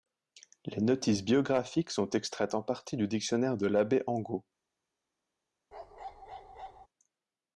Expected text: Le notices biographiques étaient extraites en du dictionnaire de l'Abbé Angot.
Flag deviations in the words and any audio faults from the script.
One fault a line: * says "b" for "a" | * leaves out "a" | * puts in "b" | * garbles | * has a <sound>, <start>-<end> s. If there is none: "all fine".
* says "Les" for "Le"
* says "sont" for "étaient"
* puts in "partie"
* has a bark, 5.7-6.9 s